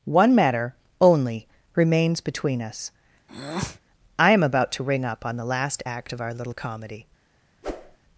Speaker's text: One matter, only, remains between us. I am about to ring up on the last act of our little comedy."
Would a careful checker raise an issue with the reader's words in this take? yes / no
no